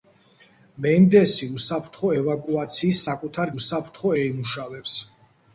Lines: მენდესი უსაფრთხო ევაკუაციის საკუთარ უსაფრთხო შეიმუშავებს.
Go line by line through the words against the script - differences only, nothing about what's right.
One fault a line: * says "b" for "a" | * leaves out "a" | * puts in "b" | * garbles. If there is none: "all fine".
all fine